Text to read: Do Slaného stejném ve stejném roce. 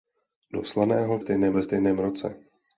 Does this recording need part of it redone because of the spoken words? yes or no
no